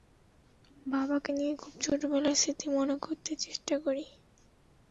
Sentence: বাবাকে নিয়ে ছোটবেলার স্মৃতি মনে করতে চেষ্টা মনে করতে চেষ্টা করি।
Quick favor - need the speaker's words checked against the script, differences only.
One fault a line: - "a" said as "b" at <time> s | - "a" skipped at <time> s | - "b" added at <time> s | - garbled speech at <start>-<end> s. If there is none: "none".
- "খুব" added at 1.5 s
- "মনে করতে চেষ্টা" skipped at 3.7 s